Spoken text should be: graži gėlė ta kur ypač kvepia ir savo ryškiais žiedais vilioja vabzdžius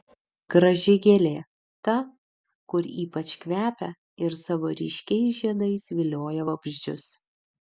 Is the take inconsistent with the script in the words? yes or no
no